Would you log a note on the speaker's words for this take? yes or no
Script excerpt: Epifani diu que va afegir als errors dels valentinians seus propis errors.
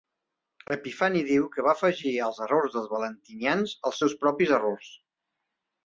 yes